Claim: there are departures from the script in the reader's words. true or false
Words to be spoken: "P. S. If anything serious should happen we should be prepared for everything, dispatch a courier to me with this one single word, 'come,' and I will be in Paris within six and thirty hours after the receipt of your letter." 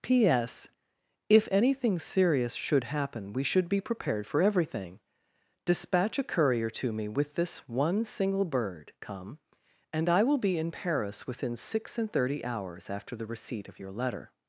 true